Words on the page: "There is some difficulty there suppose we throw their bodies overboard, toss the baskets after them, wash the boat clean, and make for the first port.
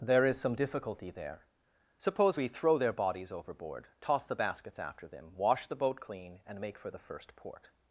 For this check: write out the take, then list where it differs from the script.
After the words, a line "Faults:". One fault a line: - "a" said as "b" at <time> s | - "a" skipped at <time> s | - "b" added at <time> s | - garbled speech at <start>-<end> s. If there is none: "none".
"There is some difficulty there suppose we throw their bodies overboard, toss the baskets after them, wash the boat clean, and make for the first port.
Faults:
none